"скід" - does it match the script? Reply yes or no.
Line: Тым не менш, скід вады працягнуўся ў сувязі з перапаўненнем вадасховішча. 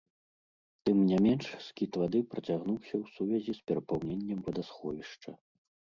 yes